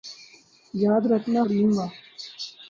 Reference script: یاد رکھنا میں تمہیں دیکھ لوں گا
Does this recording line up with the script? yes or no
no